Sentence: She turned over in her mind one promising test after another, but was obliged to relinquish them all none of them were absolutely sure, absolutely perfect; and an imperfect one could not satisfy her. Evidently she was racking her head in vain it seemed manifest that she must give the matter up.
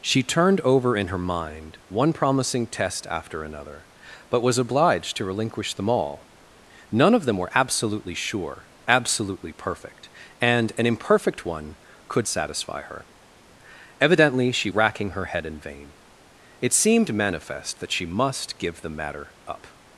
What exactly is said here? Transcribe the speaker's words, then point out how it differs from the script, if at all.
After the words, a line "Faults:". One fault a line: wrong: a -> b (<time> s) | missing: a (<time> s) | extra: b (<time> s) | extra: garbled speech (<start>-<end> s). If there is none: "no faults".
She turned over in her mind one promising test after another, but was obliged to relinquish them all none of them were absolutely sure, absolutely perfect; and an imperfect one could satisfy her. Evidently she racking her head in vain it seemed manifest that she must give the matter up.
Faults:
missing: not (12.3 s)
missing: was (14.7 s)